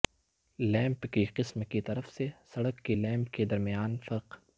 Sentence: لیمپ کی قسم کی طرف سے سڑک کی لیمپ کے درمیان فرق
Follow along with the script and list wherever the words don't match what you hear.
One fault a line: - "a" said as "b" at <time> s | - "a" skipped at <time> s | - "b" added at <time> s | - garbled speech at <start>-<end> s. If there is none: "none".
none